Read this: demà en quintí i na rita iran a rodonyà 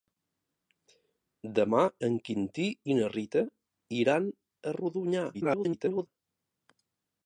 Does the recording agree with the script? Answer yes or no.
no